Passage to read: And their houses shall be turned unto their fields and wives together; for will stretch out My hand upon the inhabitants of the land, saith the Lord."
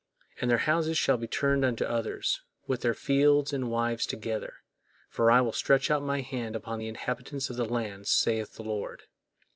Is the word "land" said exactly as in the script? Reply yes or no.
yes